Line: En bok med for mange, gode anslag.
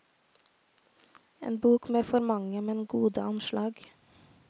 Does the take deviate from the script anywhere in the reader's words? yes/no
yes